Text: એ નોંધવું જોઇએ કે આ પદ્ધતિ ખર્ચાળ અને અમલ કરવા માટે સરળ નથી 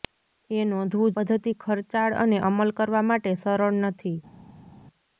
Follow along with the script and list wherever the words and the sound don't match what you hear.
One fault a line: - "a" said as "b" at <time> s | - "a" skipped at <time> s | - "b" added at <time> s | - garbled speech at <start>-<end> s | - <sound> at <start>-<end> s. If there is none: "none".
- "જોઇએ કે આ" skipped at 1.1 s